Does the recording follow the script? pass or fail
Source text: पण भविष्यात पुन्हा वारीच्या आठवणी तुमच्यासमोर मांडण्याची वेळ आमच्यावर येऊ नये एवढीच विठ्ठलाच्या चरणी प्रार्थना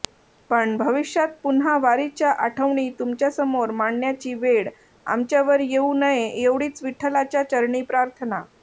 pass